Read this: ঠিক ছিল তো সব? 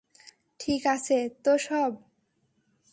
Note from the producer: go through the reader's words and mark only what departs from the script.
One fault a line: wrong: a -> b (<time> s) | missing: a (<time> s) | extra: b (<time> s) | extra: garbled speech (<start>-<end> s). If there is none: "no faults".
wrong: ছিল -> আছে (0.9 s)